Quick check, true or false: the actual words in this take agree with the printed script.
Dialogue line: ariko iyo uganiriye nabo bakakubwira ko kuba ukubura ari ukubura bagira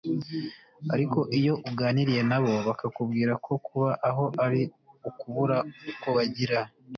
false